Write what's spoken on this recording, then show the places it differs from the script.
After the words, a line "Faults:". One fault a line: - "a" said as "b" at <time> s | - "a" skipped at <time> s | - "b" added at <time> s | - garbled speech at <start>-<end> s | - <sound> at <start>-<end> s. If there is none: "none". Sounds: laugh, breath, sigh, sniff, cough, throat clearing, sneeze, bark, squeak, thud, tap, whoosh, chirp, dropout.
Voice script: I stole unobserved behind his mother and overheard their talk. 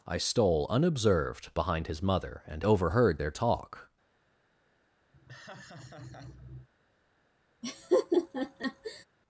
I stole unobserved behind his mother and overheard their talk.
Faults:
- laugh at 5.1-6.7 s
- laugh at 7.6-9.1 s